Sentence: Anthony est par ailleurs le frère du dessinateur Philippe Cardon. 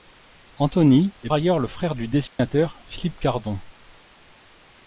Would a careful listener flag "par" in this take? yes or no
yes